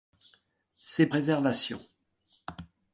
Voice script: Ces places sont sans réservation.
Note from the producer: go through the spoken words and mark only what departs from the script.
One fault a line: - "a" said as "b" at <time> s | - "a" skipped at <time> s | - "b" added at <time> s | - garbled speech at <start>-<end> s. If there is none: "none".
- "places sont sans" skipped at 1.1 s